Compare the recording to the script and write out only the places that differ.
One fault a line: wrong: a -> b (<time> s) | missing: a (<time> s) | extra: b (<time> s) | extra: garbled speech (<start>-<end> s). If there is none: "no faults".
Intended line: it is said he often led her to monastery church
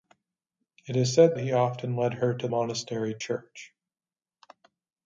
no faults